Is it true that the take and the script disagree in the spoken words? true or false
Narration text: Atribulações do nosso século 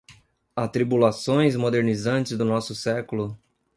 true